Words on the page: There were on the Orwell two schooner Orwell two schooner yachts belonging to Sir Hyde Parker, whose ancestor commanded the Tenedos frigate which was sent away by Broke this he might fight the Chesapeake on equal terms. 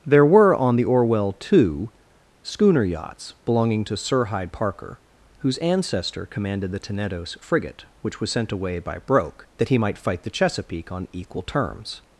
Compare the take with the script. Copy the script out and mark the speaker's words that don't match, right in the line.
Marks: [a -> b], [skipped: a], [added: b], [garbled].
There were on the Orwell two schooner [skipped: Orwell two schooner] yachts belonging to Sir Hyde Parker, whose ancestor commanded the Tenedos frigate which was sent away by Broke [this -> that] he might fight the Chesapeake on equal terms.